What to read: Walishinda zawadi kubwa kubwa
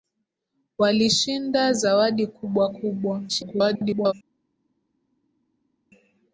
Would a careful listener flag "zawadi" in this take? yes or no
no